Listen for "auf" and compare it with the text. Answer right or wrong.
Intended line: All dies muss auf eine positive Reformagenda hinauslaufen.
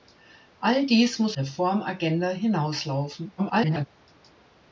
wrong